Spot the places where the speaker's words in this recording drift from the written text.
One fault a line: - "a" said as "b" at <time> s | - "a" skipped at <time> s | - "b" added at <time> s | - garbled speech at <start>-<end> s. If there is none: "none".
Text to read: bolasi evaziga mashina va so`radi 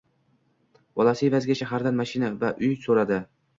- "shahardan" added at 1.6 s
- "uy" added at 2.6 s